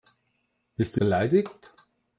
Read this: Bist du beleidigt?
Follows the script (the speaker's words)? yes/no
yes